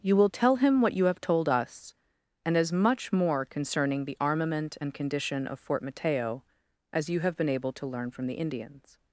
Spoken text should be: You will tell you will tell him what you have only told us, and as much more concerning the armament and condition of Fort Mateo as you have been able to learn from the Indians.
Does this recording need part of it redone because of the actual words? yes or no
yes